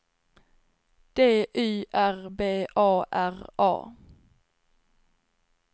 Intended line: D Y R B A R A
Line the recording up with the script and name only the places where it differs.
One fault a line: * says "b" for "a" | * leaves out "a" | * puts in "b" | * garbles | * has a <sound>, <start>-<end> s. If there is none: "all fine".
all fine